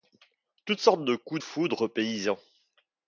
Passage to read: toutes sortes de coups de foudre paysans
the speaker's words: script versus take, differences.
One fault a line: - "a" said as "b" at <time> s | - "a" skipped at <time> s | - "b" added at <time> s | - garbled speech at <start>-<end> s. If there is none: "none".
- "de" skipped at 1.4 s